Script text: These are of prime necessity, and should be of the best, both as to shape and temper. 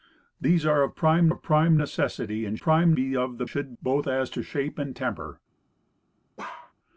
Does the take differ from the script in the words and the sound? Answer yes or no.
yes